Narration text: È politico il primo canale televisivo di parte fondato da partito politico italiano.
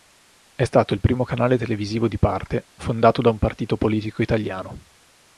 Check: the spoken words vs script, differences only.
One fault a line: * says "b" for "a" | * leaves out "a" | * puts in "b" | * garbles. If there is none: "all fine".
* says "stato" for "politico"
* puts in "un"